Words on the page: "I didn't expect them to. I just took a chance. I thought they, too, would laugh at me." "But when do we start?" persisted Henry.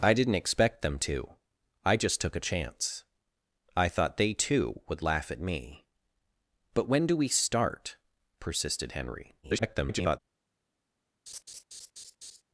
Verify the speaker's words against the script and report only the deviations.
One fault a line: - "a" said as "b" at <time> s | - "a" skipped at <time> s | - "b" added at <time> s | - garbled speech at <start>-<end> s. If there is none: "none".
- garbled speech at 9.4-10.2 s